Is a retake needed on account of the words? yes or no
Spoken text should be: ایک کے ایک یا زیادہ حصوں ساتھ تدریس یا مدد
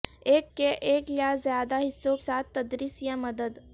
no